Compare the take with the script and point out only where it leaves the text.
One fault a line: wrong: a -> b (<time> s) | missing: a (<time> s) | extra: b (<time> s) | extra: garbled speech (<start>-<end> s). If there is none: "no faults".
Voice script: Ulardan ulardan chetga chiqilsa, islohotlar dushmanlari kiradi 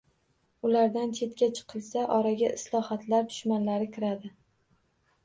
missing: ulardan (1.1 s)
extra: oraga (2.2 s)